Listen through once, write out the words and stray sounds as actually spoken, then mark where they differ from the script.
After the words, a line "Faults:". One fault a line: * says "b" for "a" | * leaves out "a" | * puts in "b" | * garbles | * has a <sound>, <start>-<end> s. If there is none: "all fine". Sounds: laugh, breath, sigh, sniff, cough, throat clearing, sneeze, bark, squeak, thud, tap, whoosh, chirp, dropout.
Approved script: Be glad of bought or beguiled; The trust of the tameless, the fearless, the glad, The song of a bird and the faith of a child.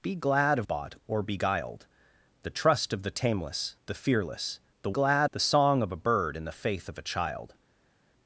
Be glad of bought or beguiled; The trust of the tameless, the fearless, the glad, The song of a bird and the faith of a child.
Faults:
all fine